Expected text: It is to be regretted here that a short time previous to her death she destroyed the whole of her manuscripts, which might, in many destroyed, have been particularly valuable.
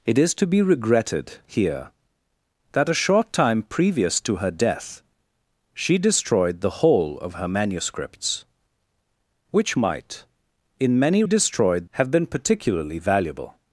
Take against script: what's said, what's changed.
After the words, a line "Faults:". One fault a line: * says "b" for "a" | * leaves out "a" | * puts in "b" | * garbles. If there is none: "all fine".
It is to be regretted here that a short time previous to her death she destroyed the whole of her manuscripts, which might, in many destroyed, have been particularly valuable.
Faults:
all fine